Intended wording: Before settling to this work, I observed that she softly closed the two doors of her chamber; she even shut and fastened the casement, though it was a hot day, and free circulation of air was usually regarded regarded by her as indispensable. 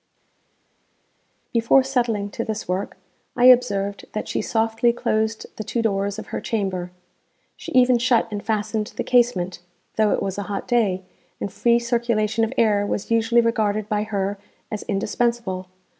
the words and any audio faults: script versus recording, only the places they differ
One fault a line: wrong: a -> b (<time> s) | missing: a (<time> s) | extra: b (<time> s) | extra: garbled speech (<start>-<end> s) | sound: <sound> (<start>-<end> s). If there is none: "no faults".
missing: regarded (13.9 s)